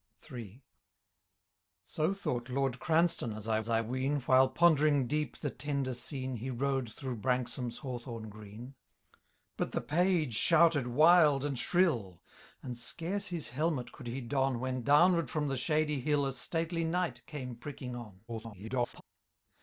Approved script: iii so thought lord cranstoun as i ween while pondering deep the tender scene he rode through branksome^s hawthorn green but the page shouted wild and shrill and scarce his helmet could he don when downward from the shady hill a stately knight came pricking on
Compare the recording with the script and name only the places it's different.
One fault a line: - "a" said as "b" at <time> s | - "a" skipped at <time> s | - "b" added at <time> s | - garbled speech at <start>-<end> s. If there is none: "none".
- "as i" added at 3.6 s
- garbled speech at 18.3-19.0 s